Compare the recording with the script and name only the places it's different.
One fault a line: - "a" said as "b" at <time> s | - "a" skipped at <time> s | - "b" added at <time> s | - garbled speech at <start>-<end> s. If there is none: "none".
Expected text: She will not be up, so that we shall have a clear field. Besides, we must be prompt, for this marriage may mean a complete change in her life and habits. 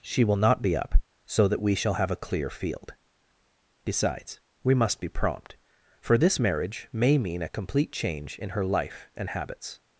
none